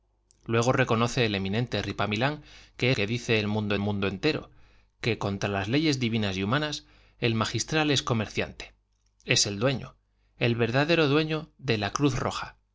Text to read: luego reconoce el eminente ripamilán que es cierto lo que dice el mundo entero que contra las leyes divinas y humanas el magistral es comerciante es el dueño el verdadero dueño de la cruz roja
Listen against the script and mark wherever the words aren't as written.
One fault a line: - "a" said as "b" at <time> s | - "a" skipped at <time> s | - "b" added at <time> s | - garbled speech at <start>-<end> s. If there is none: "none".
- "es cierto lo" skipped at 2.9 s
- "mundo" added at 3.8 s